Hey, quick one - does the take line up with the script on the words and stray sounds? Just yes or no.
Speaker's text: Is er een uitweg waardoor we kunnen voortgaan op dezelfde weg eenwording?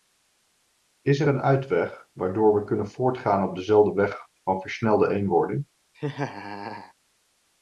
no